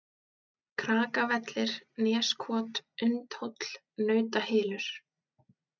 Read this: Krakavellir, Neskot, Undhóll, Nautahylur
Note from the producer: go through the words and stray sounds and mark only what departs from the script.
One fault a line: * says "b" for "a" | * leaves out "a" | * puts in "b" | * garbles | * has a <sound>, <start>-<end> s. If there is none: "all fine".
all fine